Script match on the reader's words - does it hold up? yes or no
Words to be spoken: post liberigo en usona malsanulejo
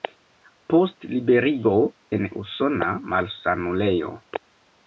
yes